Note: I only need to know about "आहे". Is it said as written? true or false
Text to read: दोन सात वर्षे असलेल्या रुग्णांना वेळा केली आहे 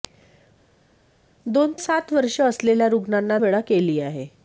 true